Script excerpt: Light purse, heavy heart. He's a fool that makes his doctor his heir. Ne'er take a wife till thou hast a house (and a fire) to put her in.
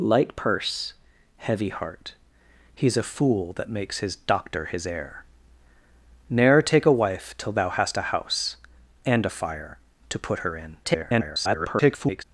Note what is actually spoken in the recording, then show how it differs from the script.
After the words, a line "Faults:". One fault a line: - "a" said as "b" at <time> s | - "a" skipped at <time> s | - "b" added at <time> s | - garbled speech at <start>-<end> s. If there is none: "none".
Light purse, heavy heart. He's a fool that makes his doctor his heir. Ne'er take a wife till thou hast a house (and a fire) to put her in. [garbled]
Faults:
- garbled speech at 10.8-12.2 s